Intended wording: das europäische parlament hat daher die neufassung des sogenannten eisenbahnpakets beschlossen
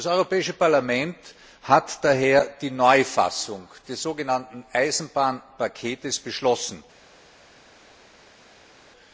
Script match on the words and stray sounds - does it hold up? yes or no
yes